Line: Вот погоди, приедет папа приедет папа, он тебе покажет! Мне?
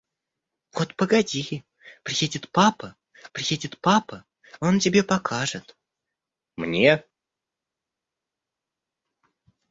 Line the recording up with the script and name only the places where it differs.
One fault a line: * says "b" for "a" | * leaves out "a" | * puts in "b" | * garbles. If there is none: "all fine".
all fine